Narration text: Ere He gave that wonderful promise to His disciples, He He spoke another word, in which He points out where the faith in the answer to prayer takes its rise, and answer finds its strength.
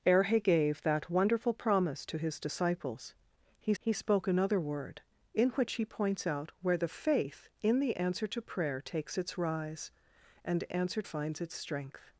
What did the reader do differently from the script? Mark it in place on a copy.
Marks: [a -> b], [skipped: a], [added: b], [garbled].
Ere He gave that wonderful promise to His disciples, He He spoke another word, in which He points out where the faith in the answer to prayer takes its rise, and answer finds its strength.